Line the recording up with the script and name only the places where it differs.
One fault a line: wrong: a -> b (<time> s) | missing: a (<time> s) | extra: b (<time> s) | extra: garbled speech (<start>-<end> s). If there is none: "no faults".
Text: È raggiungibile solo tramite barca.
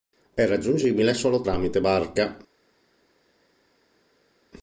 no faults